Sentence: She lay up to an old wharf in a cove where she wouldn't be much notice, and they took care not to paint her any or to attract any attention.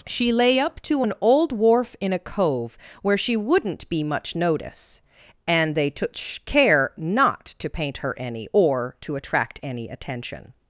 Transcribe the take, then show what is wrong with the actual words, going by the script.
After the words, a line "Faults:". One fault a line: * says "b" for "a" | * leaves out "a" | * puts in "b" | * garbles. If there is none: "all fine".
She lay up to an old wharf in a cove where she wouldn't be much notice, and they took care not to paint her any or to attract any attention.
Faults:
all fine